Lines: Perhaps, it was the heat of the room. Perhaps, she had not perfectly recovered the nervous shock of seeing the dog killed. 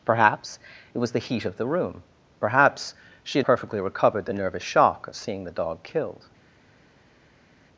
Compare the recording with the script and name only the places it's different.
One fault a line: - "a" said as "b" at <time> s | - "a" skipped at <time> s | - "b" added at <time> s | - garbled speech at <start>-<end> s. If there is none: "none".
- "not" skipped at 3.5 s